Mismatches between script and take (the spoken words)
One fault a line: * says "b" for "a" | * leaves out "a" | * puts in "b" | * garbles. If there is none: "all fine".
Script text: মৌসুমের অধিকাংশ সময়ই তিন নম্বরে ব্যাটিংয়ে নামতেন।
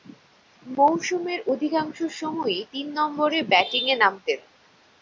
all fine